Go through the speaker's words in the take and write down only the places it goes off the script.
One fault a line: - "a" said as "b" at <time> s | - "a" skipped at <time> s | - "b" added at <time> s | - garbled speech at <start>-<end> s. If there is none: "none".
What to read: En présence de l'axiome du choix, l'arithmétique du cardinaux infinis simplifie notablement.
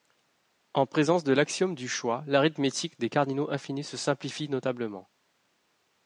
- "du" said as "des" at 3.0 s
- "se" added at 3.8 s